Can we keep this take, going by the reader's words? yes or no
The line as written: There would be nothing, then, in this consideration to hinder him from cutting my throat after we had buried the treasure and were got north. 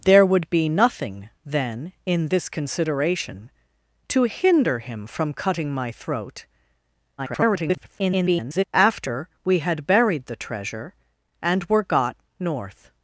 no